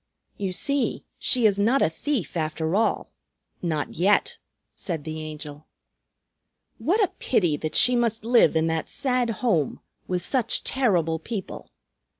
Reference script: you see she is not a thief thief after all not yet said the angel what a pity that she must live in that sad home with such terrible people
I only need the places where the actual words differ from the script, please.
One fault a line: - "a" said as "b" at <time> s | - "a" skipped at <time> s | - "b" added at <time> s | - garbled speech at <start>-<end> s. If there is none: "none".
- "thief" skipped at 2.4 s